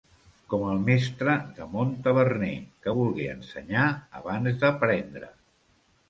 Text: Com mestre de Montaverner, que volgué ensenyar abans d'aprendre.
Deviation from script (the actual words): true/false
true